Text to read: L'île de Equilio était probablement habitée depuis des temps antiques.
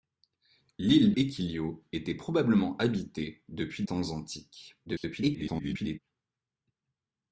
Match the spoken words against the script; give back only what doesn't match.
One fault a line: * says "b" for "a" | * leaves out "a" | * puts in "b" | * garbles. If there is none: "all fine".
* leaves out "de"
* leaves out "des"
* garbles